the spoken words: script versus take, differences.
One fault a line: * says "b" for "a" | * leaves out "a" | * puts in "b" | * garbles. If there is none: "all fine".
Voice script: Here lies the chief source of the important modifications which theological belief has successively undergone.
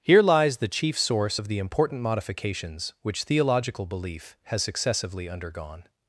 all fine